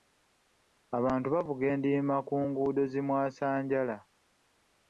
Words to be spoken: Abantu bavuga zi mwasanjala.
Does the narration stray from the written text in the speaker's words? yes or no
yes